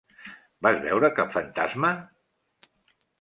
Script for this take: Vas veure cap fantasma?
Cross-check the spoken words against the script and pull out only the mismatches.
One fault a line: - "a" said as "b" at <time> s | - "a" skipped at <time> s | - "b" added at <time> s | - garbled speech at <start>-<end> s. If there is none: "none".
none